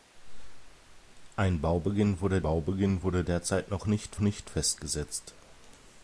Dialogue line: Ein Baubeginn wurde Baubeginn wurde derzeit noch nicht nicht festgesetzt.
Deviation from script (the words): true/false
false